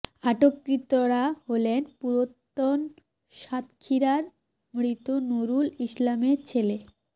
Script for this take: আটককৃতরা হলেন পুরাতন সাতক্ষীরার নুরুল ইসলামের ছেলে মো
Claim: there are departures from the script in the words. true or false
true